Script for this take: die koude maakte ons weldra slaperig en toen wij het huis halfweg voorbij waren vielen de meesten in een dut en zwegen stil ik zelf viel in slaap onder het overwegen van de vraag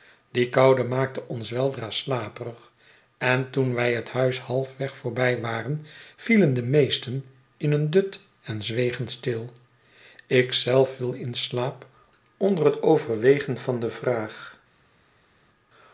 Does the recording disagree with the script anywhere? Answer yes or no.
no